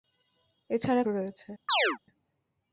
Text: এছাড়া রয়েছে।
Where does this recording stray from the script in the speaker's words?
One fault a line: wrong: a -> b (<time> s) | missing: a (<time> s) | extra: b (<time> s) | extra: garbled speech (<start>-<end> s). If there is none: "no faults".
no faults